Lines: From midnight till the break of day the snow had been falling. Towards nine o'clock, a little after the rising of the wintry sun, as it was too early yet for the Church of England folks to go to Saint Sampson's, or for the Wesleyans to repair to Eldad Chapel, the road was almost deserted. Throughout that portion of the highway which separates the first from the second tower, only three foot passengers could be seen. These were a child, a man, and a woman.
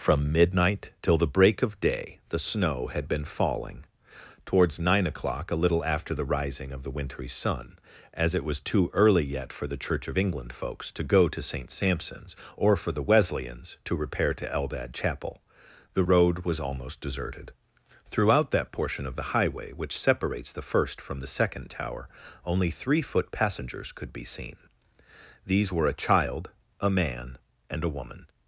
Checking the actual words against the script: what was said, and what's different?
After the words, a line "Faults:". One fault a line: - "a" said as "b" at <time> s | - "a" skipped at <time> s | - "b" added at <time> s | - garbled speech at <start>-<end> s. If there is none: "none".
From midnight till the break of day the snow had been falling. Towards nine o'clock, a little after the rising of the wintry sun, as it was too early yet for the Church of England folks to go to Saint Sampson's, or for the Wesleyans to repair to Eldad Chapel, the road was almost deserted. Throughout that portion of the highway which separates the first from the second tower, only three foot passengers could be seen. These were a child, a man, and a woman.
Faults:
none